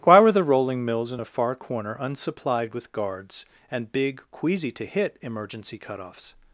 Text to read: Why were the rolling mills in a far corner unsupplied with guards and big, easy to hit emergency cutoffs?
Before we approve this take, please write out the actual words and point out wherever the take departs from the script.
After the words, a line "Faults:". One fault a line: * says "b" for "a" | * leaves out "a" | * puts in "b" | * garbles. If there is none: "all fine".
Why were the rolling mills in a far corner unsupplied with guards and big, queasy to hit emergency cutoffs?
Faults:
* says "queasy" for "easy"